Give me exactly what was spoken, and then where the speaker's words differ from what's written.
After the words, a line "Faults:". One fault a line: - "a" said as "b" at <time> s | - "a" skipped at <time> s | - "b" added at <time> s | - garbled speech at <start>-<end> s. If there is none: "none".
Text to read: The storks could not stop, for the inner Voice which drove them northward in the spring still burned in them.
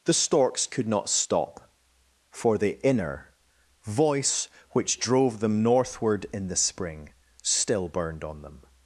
The storks could not stop, for the inner Voice which drove them northward in the spring still burned on them.
Faults:
- "in" said as "on" at 8.2 s